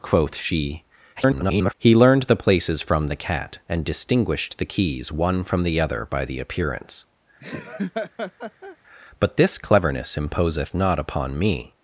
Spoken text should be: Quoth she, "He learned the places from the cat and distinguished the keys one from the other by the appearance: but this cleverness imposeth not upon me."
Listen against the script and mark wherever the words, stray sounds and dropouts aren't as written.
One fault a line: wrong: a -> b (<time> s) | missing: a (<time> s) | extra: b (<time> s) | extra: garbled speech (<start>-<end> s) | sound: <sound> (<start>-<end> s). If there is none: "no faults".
extra: garbled speech (1.2-1.7 s)
sound: laugh (7.4-8.8 s)